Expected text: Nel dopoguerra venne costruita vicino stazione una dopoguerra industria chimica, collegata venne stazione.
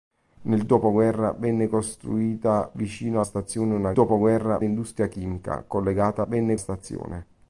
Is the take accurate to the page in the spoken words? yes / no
yes